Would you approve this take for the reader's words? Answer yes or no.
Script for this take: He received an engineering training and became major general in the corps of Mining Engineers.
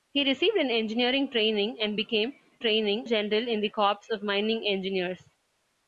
no